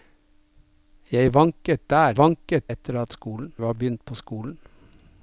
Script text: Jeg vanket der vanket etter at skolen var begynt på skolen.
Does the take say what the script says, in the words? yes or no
yes